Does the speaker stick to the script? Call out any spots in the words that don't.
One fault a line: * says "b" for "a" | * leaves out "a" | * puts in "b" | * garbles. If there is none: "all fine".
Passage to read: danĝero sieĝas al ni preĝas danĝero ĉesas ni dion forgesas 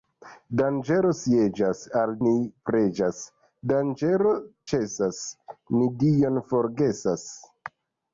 all fine